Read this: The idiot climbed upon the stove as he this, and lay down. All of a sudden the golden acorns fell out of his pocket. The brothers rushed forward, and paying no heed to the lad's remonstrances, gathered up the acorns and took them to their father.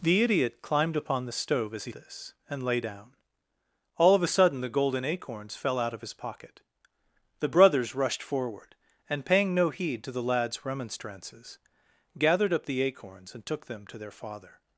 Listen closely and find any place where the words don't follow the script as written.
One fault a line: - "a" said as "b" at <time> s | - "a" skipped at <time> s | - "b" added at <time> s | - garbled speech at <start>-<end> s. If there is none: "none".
none